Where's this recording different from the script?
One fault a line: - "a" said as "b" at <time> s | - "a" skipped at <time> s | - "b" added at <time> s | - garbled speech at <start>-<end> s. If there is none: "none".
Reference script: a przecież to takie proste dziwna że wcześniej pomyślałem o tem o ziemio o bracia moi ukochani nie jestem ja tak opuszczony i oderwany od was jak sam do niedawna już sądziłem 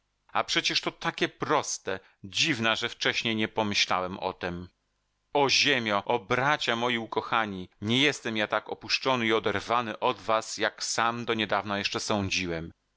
- "nie" added at 3.4 s
- "już" said as "jeszcze" at 11.8 s